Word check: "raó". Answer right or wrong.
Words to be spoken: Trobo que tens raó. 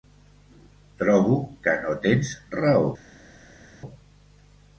right